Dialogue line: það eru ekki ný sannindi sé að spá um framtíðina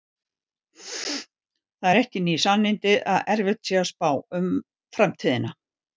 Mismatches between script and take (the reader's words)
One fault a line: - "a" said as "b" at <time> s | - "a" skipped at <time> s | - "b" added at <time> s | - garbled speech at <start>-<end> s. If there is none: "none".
- "að erfitt" added at 3.1 s